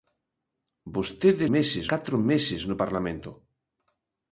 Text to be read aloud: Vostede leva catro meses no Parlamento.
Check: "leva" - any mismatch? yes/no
yes